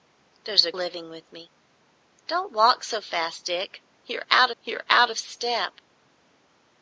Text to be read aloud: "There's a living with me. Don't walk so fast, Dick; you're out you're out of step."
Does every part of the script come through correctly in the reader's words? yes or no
yes